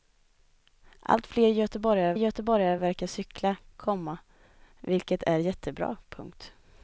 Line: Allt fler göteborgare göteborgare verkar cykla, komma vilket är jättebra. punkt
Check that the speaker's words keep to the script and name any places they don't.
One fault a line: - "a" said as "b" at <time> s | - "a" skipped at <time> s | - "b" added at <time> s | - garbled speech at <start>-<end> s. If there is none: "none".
none